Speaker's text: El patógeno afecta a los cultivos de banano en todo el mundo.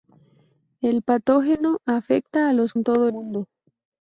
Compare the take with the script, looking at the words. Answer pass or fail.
fail